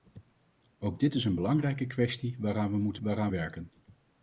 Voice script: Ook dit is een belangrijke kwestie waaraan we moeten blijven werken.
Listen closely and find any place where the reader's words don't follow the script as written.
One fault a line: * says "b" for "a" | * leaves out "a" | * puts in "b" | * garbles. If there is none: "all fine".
* says "waaraan" for "blijven"